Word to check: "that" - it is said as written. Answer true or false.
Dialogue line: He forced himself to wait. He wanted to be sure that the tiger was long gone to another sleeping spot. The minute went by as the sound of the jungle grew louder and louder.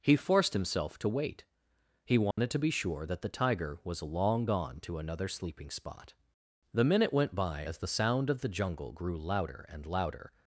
true